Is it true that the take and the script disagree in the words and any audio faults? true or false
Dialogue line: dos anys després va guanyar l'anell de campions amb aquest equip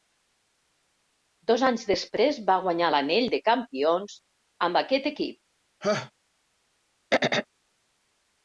true